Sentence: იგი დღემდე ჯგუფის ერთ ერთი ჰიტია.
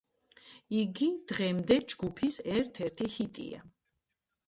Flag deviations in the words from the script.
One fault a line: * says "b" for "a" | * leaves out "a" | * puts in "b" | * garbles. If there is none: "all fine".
all fine